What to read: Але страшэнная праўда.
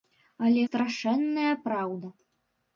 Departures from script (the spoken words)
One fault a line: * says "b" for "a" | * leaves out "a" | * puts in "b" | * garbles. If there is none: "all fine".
all fine